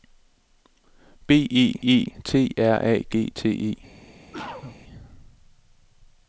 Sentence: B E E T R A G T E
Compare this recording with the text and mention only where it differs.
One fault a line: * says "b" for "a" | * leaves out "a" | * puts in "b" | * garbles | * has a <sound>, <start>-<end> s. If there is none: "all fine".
* has a cough, 4.3-4.8 s